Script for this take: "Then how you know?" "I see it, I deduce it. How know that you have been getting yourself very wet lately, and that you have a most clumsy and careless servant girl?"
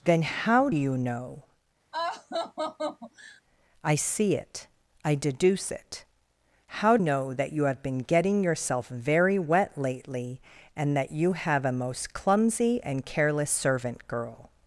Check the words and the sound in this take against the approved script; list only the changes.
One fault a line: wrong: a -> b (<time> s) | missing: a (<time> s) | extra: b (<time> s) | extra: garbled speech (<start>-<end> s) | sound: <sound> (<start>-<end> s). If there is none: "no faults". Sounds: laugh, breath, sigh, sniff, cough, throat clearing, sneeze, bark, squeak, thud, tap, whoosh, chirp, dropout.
sound: laugh (1.9-3.4 s)